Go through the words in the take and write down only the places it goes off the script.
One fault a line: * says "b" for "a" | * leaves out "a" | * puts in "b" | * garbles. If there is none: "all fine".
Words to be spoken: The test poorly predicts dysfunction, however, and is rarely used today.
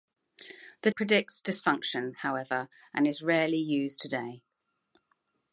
* leaves out "test poorly"